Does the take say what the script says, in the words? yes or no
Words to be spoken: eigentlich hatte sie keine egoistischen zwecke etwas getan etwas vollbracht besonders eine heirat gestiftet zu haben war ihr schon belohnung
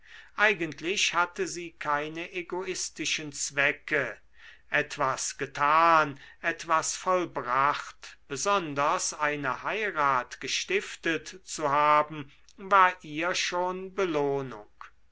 yes